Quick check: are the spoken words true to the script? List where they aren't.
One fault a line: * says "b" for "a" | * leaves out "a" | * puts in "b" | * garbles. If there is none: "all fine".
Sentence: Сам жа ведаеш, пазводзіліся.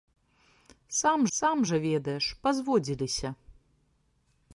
* puts in "сам"